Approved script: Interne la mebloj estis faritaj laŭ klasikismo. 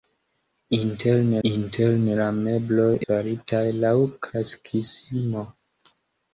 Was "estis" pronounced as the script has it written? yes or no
no